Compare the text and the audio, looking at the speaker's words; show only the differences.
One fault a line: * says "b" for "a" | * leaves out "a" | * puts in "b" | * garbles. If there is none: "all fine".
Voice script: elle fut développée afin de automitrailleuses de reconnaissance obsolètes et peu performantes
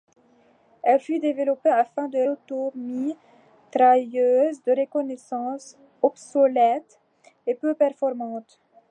all fine